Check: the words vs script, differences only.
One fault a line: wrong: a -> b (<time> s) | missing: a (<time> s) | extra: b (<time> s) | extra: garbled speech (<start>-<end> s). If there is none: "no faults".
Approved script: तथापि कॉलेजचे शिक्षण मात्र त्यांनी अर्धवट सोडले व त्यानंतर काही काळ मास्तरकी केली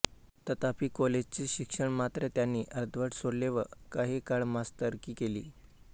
missing: त्यानंतर (3.6 s)